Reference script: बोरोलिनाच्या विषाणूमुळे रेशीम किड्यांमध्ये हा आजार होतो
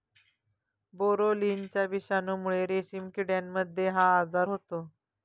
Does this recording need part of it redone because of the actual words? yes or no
no